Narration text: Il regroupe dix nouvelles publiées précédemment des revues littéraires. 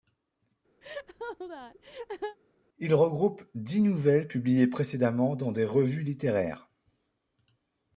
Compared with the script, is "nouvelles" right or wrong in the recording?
right